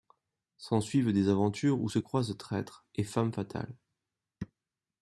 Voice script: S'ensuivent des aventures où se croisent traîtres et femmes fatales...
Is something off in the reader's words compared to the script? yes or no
no